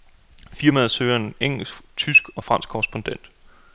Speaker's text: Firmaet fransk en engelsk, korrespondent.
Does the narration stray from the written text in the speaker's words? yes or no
yes